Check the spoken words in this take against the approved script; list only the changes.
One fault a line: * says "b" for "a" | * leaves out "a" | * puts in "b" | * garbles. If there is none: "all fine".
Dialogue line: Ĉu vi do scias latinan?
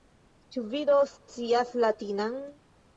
all fine